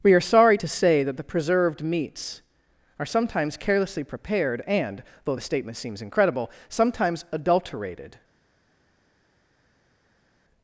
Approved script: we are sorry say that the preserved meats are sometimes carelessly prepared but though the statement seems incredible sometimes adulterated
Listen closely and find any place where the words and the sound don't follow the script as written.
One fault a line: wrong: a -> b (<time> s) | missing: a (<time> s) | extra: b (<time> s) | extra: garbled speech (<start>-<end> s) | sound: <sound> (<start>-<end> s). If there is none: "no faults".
extra: to (0.5 s)
wrong: but -> and (4.6 s)